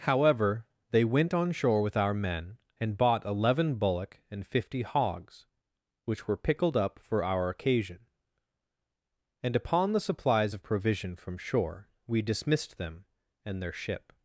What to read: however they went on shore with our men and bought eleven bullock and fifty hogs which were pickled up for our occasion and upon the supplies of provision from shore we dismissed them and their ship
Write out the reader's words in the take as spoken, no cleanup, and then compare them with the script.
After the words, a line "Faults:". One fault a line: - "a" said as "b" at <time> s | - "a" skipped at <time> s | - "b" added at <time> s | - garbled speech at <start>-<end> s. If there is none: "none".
however they went on shore with our men and bought eleven bullock and fifty hogs which were pickled up for our occasion and upon the supplies of provision from shore we dismissed them and their ship
Faults:
none